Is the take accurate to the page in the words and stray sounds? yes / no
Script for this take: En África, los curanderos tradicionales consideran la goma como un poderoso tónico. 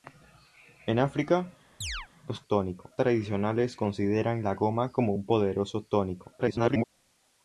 no